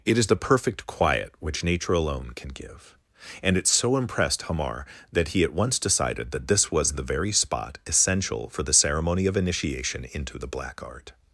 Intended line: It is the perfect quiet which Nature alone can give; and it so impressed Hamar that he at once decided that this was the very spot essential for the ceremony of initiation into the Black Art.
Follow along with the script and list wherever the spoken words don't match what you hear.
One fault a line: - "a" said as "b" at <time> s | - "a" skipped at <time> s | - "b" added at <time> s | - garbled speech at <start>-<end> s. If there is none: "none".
none